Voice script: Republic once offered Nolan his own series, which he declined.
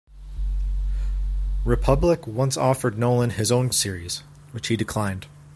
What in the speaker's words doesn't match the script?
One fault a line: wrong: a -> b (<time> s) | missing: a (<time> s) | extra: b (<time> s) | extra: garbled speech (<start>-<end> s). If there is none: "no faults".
no faults